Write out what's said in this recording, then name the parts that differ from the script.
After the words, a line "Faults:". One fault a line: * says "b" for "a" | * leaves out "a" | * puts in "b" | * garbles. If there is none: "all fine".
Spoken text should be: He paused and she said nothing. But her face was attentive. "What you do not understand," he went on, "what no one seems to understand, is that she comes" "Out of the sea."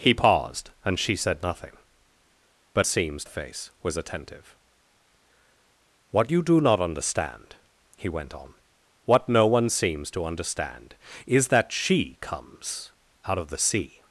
He paused and she said nothing. But seems face was attentive. "What you do not understand," he went on, "what no one seems to understand, is that she comes" "Out of the sea."
Faults:
* says "seems" for "her"